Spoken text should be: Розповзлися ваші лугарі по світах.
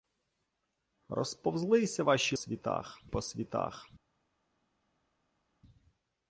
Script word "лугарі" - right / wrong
wrong